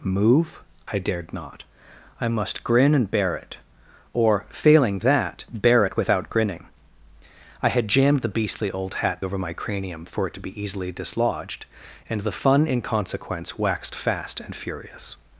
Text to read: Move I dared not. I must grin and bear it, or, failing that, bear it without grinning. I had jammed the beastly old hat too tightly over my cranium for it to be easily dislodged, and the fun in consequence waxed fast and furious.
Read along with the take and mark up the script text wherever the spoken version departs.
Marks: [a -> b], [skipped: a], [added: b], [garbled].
Move I dared not. I must grin and bear it, or, failing that, bear it without grinning. I had jammed the beastly old hat [skipped: too tightly] over my cranium for it to be easily dislodged, and the fun in consequence waxed fast and furious.